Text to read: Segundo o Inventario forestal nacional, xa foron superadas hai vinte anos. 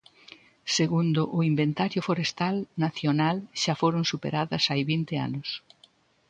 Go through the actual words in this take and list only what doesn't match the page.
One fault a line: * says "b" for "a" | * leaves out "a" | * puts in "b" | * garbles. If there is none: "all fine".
all fine